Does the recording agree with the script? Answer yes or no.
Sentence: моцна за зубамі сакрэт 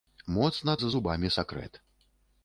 yes